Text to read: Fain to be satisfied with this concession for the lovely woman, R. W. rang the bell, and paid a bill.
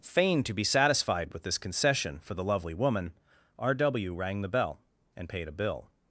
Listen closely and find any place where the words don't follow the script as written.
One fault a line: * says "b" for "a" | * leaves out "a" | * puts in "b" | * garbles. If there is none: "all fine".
all fine